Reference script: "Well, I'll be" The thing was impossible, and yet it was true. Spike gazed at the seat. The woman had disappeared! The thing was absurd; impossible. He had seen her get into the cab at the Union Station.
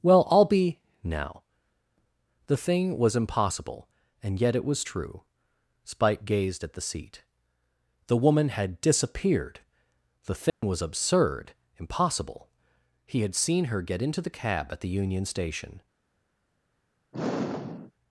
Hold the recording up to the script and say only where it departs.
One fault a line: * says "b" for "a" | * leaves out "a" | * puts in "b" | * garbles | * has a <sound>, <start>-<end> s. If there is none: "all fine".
* puts in "now"
* has a dropout, 10.5-10.6 s
* has a sigh, 17.1-17.9 s